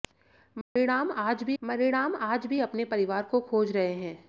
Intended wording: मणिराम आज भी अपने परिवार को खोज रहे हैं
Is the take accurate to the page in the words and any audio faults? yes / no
no